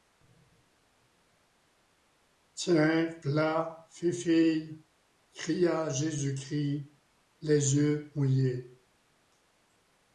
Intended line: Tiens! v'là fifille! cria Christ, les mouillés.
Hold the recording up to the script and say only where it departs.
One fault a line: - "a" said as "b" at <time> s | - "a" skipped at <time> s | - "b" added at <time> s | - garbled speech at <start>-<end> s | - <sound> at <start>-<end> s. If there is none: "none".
- "Jésus" added at 5.9 s
- "yeux" added at 7.7 s